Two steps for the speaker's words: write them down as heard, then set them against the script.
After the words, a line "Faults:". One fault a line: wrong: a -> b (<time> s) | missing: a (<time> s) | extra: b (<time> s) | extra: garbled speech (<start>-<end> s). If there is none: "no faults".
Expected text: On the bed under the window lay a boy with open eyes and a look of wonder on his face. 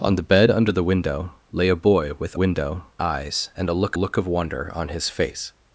On the bed under the window lay a boy with window eyes and a look look of wonder on his face.
Faults:
wrong: open -> window (2.4 s)
extra: look (4.0 s)